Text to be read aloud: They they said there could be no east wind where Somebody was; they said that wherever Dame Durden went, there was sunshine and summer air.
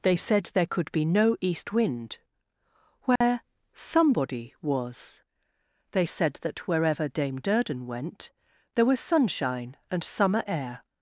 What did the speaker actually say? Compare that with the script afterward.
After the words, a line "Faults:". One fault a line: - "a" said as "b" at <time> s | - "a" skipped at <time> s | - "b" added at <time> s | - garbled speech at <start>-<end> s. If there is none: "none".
They said there could be no east wind where Somebody was; they said that wherever Dame Durden went, there was sunshine and summer air.
Faults:
- "they" skipped at 0.1 s